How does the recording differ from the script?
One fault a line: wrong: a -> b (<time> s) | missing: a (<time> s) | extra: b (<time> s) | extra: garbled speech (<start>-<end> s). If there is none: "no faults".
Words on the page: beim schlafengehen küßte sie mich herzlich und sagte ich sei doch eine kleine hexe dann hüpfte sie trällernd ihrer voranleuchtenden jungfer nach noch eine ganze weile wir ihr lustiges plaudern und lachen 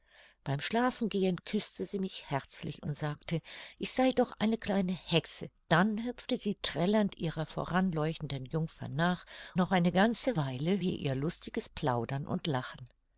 no faults